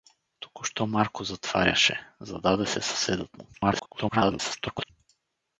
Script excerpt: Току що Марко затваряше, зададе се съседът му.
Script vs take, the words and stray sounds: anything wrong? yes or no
yes